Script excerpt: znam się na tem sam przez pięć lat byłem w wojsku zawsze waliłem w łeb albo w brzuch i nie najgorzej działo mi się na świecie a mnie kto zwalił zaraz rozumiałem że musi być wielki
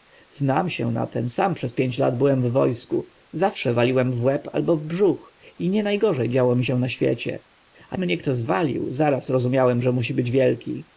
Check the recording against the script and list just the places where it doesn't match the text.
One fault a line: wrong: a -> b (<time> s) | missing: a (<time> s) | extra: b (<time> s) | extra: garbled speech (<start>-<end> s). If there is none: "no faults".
no faults